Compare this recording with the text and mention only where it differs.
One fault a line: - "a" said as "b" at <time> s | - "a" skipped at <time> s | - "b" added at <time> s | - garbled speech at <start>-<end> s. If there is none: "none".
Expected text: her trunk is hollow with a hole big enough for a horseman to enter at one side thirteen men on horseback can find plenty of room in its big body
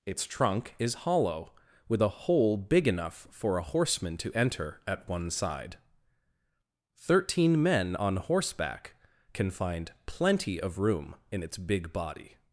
- "her" said as "its" at 0.1 s